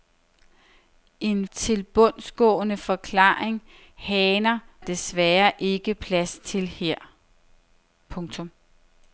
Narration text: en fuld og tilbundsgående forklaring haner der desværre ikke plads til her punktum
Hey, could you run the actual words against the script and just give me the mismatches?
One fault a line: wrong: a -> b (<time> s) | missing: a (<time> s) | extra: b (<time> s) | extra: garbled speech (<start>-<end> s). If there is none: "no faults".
missing: fuld og (1.5 s)
missing: der (4.6 s)